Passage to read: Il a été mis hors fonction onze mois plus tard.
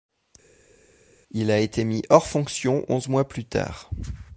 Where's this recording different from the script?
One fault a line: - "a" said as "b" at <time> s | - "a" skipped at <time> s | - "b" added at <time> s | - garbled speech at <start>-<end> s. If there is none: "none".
none